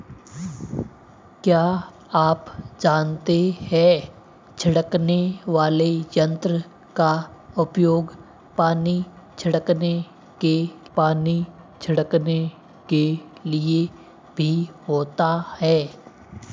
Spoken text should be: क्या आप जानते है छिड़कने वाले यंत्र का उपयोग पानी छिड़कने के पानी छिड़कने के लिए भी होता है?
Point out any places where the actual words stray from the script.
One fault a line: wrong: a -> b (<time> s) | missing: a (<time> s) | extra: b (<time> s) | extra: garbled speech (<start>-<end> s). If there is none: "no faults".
no faults